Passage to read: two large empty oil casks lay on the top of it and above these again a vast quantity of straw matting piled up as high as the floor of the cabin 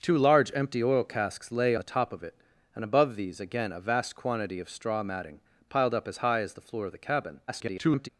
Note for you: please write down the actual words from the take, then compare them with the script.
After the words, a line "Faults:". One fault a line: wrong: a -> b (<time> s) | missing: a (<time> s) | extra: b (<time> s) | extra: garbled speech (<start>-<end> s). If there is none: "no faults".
two large empty oil casks lay the top of it and above these again a vast quantity of straw matting piled up as high as the floor of the cabin [garbled]
Faults:
missing: on (1.8 s)
extra: garbled speech (7.5-8.1 s)